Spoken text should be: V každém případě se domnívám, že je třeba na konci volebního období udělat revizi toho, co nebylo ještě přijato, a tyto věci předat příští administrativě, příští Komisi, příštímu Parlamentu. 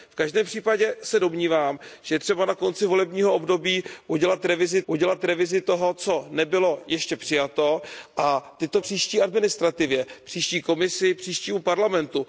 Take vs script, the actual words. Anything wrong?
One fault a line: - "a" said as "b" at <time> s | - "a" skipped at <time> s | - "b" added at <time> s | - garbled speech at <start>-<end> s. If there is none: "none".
- "udělat revizi" added at 4.9 s
- "věci předat" skipped at 8.8 s